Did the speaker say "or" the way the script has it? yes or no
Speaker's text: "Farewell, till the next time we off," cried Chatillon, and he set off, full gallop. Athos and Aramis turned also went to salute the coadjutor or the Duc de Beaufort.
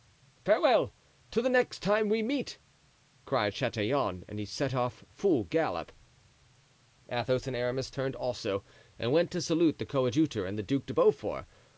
no